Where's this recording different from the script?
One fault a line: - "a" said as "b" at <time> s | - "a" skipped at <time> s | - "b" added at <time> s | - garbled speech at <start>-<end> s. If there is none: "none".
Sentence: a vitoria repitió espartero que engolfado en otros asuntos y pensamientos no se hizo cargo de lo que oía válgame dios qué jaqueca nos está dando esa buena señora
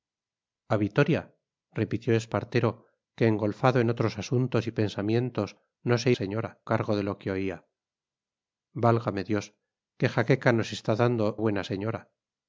- "hizo" said as "señora" at 6.1 s
- "esa" skipped at 11.4 s